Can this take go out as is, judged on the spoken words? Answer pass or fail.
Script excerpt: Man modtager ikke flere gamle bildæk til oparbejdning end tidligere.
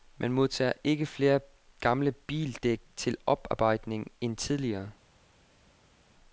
pass